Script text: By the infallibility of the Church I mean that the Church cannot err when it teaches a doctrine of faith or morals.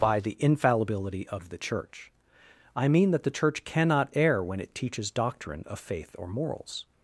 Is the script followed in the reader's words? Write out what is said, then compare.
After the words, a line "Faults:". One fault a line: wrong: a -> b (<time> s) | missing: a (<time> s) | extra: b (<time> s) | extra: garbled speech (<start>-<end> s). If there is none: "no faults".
By the infallibility of the Church I mean that the Church cannot err when it teaches doctrine of faith or morals.
Faults:
missing: a (5.1 s)